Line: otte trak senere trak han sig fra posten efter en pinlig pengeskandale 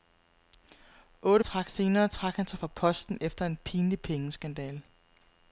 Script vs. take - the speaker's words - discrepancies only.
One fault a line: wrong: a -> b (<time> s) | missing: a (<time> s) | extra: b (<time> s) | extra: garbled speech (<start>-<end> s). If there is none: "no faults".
no faults